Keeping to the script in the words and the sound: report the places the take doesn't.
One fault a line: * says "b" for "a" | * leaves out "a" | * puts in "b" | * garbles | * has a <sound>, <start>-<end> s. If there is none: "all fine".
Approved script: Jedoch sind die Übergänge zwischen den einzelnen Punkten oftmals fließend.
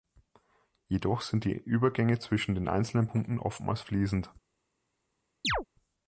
* has a chirp, 5.4-5.7 s